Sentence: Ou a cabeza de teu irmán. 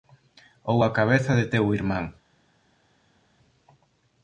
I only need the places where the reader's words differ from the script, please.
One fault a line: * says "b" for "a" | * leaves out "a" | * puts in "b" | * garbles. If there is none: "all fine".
all fine